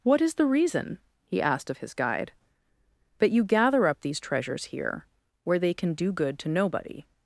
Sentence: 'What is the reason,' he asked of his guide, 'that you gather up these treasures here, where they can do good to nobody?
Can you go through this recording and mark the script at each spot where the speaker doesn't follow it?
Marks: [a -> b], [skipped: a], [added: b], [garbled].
'What is the reason,' he asked of his guide, ['that -> but] you gather up these treasures here, where they can do good to nobody?